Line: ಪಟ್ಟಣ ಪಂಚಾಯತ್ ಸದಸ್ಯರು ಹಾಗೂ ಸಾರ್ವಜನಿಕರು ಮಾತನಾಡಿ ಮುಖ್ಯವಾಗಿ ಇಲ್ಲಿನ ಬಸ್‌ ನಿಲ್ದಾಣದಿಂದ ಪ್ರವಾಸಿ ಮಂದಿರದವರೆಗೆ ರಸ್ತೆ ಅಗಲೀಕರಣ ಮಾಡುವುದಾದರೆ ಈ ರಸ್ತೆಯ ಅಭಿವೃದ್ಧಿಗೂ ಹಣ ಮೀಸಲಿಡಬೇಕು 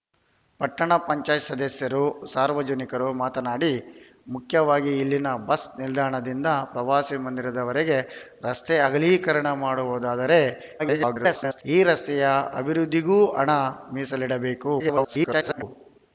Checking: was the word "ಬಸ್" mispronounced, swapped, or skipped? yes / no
no